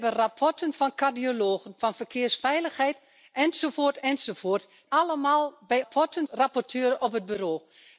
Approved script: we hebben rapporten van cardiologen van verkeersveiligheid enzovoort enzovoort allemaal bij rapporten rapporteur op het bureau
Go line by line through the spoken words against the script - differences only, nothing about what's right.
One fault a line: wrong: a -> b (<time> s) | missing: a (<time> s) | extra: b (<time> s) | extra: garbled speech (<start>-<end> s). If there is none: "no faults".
no faults